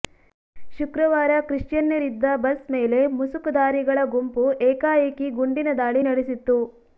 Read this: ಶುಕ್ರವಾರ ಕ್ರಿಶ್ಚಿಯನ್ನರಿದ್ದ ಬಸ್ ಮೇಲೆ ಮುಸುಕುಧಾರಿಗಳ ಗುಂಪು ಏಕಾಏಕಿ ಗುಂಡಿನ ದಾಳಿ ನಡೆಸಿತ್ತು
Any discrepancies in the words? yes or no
no